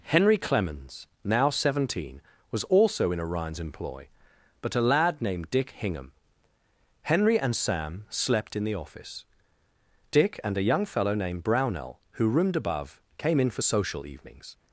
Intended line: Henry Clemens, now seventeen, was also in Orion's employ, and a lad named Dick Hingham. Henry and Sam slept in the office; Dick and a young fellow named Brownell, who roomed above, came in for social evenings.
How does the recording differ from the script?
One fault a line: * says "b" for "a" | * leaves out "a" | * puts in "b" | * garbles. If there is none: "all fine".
* says "but" for "and"